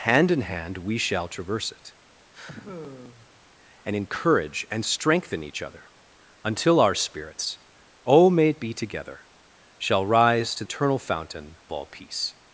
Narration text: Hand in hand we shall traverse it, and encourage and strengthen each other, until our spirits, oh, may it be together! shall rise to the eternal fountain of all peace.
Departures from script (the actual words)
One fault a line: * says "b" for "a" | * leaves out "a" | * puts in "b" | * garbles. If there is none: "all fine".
* leaves out "the"
* leaves out "of"